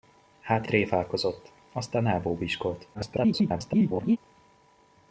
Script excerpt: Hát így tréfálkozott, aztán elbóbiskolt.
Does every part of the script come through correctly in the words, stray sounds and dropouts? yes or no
no